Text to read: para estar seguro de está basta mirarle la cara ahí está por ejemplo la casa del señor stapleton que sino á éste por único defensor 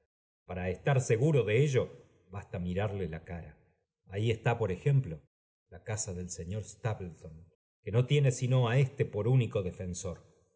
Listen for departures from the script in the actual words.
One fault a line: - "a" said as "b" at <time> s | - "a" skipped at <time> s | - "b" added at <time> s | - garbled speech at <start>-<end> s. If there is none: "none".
- "está" said as "ello" at 1.6 s
- "no tiene" added at 7.9 s